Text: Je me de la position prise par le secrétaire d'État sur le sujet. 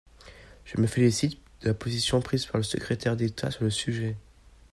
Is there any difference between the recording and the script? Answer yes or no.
yes